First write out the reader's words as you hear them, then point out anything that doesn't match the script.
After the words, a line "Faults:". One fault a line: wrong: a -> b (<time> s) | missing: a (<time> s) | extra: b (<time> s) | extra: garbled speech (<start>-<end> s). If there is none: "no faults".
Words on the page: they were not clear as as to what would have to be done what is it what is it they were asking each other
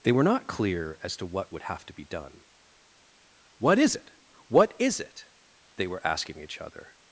they were not clear as to what would have to be done what is it what is it they were asking each other
Faults:
missing: as (1.1 s)